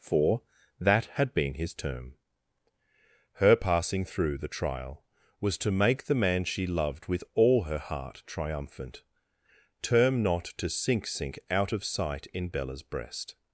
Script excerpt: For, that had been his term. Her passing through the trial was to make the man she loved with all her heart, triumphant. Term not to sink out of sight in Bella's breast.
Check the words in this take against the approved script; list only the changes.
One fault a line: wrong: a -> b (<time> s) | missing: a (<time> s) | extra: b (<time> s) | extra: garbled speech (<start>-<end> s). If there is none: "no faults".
extra: sink (11.1 s)